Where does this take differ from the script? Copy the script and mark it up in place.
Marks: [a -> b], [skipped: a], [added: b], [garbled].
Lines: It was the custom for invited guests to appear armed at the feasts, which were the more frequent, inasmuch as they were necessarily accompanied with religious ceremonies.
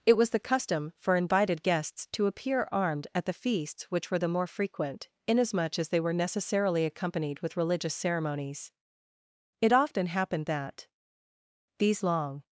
It was the custom for invited guests to appear armed at the feasts, which were the more frequent, inasmuch as they were necessarily accompanied with religious ceremonies. [added: It often happened that these long]